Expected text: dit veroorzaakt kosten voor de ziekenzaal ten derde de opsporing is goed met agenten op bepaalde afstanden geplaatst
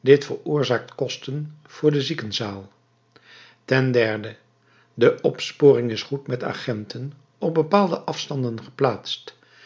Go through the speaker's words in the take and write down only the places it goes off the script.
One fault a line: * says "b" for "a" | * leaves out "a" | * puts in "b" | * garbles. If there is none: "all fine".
all fine